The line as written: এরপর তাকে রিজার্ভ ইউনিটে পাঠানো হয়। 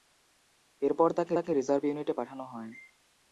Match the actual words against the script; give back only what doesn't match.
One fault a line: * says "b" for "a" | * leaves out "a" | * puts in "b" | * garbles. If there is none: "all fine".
* puts in "তাকে"